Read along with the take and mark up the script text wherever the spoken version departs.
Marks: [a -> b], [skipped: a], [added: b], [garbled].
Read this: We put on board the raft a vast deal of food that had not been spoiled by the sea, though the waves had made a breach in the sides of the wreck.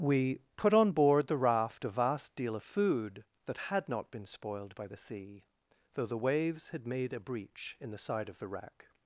We put on board the raft a vast deal of food that had not been spoiled by the sea, though the waves had made a breach in the [sides -> side] of the wreck.